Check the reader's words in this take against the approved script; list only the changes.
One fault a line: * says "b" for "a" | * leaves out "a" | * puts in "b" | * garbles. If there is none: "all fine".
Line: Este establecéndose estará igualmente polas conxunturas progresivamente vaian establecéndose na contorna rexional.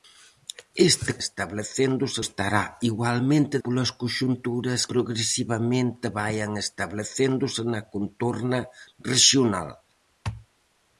all fine